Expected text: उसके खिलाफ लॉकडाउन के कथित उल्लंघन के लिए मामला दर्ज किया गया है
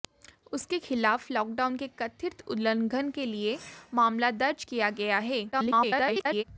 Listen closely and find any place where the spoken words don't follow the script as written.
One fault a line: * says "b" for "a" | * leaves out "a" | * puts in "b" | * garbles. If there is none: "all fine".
* garbles